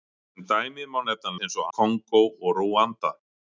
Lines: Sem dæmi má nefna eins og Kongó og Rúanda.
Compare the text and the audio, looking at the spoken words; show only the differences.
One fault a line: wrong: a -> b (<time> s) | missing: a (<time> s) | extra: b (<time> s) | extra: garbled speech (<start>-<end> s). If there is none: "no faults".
no faults